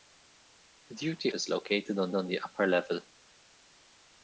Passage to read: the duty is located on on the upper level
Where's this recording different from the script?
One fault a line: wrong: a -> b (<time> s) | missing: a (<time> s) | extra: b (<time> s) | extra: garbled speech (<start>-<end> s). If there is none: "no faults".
no faults